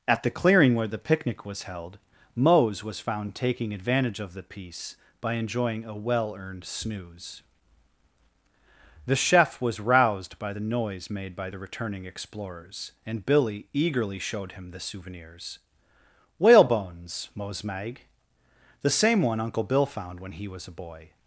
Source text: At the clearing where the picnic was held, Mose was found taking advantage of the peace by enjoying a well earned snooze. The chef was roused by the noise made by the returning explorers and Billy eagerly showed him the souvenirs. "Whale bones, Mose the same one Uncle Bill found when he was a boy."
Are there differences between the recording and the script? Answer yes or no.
yes